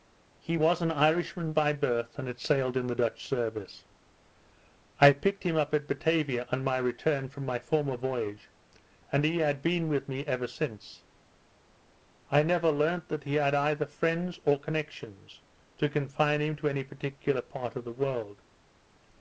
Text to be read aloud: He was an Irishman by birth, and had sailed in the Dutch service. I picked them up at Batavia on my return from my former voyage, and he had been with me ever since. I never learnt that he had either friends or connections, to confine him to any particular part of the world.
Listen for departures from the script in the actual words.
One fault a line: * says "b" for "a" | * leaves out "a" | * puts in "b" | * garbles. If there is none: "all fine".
* says "him" for "them"